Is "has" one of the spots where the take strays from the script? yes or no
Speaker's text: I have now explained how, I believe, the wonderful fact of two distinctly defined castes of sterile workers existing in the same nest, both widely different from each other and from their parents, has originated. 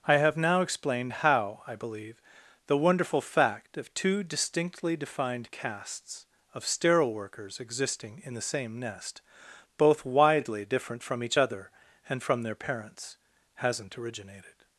yes